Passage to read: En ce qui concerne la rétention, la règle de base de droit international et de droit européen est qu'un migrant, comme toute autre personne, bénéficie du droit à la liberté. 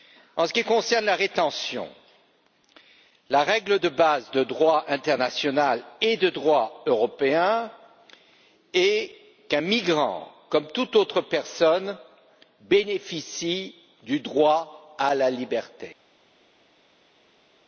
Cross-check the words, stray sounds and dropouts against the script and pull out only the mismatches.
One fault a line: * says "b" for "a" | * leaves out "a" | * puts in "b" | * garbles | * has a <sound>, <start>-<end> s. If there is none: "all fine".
all fine